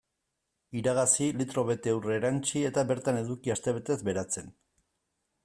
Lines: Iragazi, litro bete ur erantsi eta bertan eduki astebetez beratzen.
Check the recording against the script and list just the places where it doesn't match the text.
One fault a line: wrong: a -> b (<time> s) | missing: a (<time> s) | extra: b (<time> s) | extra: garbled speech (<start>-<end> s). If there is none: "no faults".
no faults